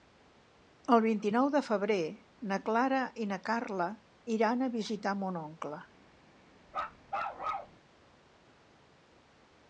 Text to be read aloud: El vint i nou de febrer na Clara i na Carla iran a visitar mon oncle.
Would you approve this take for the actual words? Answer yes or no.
yes